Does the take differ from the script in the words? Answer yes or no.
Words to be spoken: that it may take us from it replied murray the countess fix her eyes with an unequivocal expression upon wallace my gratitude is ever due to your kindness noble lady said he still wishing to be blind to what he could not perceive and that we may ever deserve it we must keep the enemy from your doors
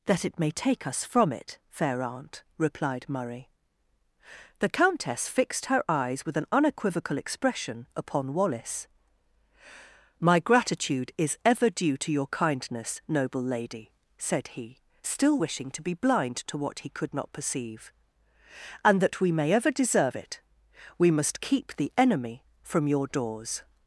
yes